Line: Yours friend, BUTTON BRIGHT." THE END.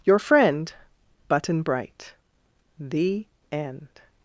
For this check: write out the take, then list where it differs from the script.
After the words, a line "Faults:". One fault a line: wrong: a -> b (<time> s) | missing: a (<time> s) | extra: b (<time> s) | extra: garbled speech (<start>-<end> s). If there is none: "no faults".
Your friend, BUTTON BRIGHT." THE END.
Faults:
wrong: Yours -> Your (0.0 s)